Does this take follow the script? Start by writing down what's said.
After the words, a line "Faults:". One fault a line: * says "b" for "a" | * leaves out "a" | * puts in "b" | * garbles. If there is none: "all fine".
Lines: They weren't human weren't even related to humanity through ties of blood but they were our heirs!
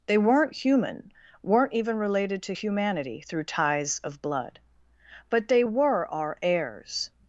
They weren't human weren't even related to humanity through ties of blood but they were our heirs!
Faults:
all fine